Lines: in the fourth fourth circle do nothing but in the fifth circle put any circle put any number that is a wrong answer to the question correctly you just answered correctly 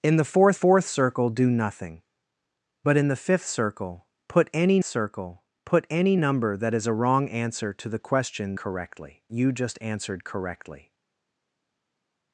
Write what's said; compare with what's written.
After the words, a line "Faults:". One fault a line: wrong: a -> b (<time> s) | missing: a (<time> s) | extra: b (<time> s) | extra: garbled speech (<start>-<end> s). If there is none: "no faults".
in the fourth fourth circle do nothing but in the fifth circle put any circle put any number that is a wrong answer to the question correctly you just answered correctly
Faults:
no faults